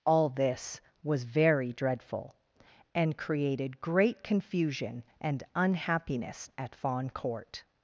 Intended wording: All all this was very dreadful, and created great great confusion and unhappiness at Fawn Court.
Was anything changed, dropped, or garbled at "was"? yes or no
no